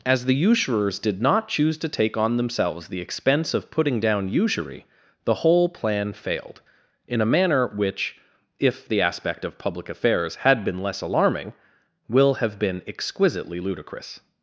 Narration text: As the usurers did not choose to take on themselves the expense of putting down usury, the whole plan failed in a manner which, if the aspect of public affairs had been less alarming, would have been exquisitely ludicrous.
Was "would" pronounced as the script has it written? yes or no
no